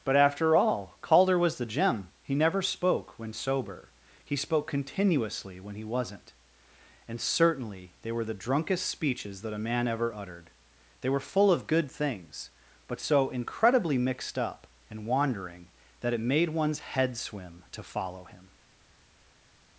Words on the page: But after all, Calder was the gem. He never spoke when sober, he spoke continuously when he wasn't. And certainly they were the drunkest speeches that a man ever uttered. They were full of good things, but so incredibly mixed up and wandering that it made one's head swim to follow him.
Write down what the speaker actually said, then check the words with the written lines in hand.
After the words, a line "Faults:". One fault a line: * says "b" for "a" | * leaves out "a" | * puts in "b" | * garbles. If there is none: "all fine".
But after all, Calder was the gem. He never spoke when sober, he spoke continuously when he wasn't. And certainly they were the drunkest speeches that a man ever uttered. They were full of good things, but so incredibly mixed up and wandering that it made one's head swim to follow him.
Faults:
all fine